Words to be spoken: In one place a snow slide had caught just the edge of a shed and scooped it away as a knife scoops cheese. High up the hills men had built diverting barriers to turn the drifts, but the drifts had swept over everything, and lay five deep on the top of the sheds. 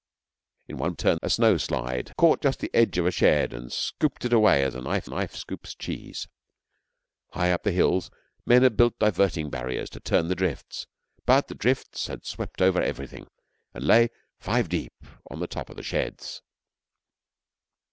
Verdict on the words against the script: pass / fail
fail